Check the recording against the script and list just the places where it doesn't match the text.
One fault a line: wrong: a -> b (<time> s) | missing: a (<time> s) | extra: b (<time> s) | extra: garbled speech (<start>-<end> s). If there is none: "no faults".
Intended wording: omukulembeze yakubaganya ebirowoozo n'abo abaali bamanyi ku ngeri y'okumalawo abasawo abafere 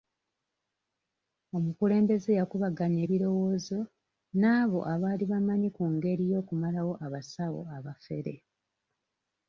no faults